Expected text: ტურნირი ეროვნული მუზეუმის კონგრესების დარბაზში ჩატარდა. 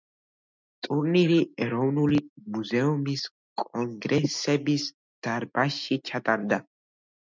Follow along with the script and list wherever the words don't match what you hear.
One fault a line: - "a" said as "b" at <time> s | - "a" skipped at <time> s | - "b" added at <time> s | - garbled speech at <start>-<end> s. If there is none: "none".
none